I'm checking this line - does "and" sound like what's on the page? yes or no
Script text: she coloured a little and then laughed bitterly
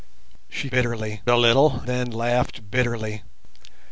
no